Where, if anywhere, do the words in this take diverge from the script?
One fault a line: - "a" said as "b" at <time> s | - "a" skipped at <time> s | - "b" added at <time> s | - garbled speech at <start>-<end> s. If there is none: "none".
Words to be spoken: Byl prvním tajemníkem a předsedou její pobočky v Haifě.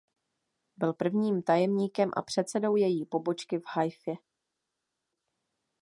none